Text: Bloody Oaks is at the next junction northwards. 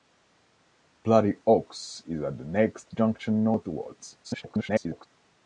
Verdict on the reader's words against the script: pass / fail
fail